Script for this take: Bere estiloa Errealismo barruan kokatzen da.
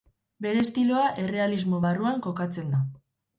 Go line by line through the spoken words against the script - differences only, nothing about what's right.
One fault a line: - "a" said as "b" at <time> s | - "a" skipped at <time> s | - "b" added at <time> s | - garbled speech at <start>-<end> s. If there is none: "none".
none